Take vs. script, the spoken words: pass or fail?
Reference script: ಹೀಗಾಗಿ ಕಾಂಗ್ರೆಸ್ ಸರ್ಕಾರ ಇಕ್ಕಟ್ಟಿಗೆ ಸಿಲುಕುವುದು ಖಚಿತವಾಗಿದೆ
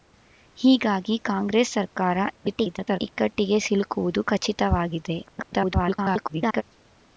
fail